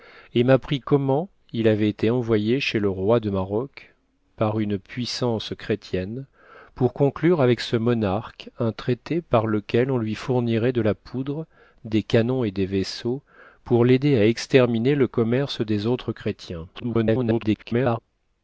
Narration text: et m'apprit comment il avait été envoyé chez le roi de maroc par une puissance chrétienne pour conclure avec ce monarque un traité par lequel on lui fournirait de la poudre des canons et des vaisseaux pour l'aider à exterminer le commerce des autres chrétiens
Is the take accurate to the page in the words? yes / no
no